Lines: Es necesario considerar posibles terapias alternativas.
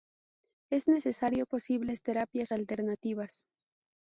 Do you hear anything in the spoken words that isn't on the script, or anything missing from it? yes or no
yes